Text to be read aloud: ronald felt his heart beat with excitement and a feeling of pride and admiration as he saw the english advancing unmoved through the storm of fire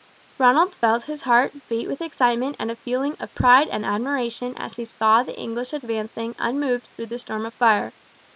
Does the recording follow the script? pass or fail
pass